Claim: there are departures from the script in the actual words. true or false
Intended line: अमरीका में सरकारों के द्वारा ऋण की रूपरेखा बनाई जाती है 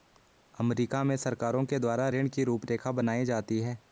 false